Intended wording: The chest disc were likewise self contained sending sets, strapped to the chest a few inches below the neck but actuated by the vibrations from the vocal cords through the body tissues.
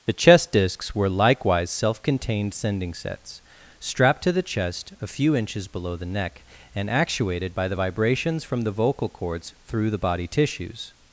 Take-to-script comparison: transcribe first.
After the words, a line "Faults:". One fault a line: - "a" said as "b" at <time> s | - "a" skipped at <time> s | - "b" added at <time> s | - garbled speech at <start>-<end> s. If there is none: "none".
The chest discs were likewise self contained sending sets, strapped to the chest a few inches below the neck and actuated by the vibrations from the vocal cords through the body tissues.
Faults:
- "disc" said as "discs" at 0.5 s
- "but" said as "and" at 6.7 s